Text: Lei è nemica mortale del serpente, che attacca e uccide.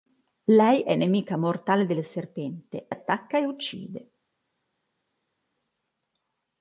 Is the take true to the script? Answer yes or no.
no